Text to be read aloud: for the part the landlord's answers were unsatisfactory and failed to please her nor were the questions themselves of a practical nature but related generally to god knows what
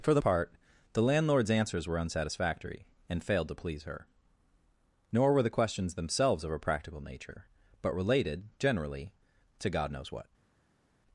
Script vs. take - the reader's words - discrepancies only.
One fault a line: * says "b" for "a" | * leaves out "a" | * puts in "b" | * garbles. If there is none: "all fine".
all fine